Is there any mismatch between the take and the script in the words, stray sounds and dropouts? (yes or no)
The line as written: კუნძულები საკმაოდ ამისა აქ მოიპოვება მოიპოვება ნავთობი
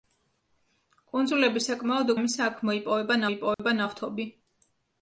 yes